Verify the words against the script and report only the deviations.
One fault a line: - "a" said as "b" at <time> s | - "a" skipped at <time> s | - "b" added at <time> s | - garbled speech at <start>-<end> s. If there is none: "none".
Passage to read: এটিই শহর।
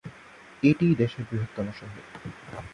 - "দেশের বৃহত্তম" added at 0.9 s